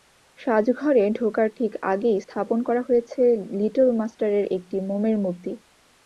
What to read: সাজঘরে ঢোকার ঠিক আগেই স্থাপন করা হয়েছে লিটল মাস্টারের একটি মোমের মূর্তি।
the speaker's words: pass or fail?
pass